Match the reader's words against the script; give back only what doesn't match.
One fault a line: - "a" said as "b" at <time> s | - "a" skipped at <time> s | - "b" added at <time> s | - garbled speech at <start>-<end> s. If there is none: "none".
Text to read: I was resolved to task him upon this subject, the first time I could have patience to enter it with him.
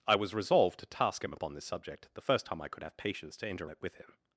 none